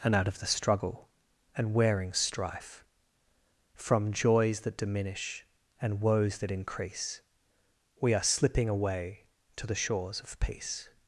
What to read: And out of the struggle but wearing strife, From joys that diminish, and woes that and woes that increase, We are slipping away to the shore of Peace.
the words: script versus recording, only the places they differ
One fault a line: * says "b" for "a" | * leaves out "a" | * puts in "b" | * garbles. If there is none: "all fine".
* says "and" for "but"
* leaves out "and woes that"
* says "shores" for "shore"